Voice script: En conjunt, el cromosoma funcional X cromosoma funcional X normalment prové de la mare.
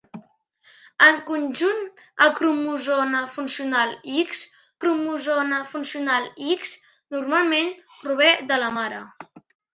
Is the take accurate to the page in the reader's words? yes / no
yes